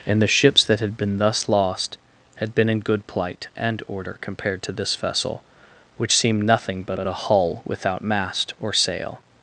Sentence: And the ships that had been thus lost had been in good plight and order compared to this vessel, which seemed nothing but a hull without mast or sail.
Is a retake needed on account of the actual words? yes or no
yes